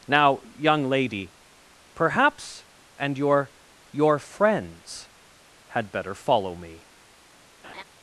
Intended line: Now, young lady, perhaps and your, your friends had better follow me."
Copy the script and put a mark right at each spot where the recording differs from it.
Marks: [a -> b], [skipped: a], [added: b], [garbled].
Now, young lady, perhaps and your, your friends had better follow me."